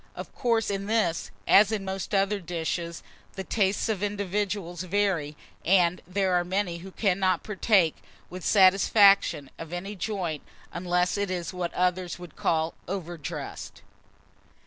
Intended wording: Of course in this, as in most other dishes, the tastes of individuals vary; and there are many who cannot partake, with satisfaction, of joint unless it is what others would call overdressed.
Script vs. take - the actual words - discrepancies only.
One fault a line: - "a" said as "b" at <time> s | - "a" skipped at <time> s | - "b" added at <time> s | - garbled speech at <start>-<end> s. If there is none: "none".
- "any" added at 9.7 s